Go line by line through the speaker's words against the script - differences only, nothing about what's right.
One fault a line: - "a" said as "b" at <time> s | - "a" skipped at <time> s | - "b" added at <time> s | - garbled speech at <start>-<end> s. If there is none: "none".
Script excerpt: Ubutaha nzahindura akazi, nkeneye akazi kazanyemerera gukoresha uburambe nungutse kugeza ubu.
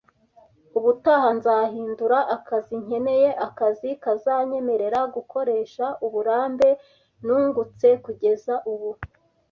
none